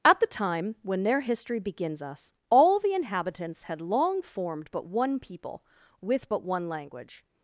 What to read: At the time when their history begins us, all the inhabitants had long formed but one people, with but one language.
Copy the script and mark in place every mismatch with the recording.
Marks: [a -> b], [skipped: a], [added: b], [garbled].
At the time when their history begins us, all the inhabitants had long formed but one people, with but one language.